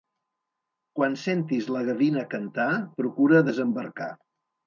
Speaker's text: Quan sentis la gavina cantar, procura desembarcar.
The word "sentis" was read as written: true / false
true